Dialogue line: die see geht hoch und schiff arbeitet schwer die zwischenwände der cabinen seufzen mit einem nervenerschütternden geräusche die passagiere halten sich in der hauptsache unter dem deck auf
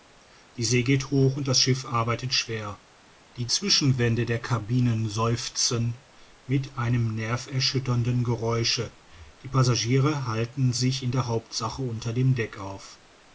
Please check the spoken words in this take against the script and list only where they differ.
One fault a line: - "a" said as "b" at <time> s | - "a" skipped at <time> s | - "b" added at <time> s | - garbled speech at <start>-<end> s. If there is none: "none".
- "das" added at 1.5 s